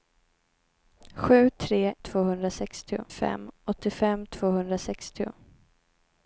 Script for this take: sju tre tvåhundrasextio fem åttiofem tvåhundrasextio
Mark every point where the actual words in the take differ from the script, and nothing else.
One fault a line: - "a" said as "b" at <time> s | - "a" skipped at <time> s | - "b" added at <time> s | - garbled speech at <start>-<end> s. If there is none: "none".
none